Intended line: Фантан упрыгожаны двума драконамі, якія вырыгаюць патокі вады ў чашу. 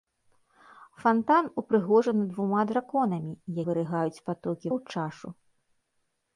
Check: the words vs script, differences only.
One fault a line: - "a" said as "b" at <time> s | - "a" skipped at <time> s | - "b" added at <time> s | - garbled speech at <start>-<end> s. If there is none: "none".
- "якія" skipped at 3.3 s
- "вады" skipped at 4.7 s